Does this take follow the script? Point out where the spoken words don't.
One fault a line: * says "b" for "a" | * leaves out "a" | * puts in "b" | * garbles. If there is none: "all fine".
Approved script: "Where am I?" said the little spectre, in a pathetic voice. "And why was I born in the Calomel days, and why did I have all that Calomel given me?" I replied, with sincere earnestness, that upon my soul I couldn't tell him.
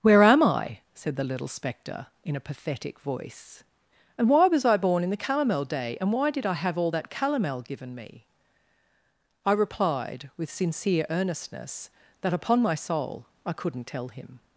* says "day" for "days"